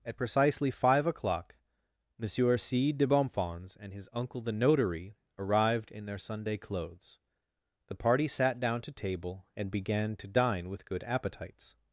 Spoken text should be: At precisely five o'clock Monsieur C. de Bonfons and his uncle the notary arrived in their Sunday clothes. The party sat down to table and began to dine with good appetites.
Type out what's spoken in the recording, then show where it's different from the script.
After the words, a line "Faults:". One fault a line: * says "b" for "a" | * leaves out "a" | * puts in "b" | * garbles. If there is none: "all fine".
At precisely five o'clock Monsieur C. de Bonfons and his uncle the notary arrived in their Sunday clothes. The party sat down to table and began to dine with good appetites.
Faults:
all fine